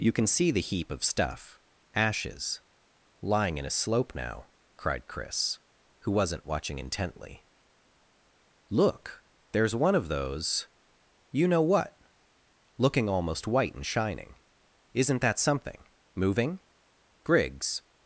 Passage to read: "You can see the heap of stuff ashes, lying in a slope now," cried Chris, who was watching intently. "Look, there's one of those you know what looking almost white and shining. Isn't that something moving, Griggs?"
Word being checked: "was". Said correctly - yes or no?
no